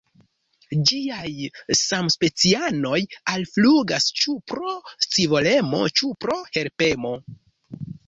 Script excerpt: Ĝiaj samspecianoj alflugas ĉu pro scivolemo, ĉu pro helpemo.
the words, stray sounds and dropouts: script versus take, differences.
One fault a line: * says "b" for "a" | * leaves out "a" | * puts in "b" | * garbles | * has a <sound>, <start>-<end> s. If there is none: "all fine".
all fine